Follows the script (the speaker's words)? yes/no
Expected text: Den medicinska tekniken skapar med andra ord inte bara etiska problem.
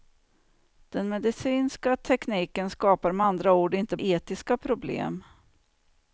no